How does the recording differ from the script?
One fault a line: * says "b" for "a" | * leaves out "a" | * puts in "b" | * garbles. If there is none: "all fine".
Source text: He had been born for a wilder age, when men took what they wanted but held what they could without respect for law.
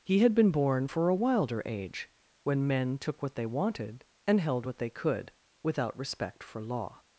* says "and" for "but"